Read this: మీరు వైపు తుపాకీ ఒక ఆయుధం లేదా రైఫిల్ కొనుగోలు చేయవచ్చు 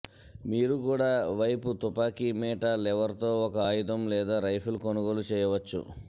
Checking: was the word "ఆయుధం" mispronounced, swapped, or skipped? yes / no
no